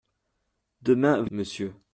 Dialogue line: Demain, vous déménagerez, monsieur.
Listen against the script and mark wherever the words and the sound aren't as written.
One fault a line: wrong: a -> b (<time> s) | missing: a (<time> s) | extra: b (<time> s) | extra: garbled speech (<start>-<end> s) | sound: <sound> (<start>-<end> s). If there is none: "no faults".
missing: déménagerez (1.3 s)